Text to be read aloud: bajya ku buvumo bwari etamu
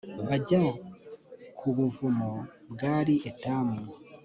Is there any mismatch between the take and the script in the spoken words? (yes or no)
no